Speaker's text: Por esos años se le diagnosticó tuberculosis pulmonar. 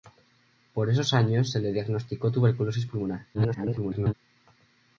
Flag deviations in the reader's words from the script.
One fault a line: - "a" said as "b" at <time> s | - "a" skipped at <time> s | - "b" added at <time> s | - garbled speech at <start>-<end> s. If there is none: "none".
- garbled speech at 3.3-4.1 s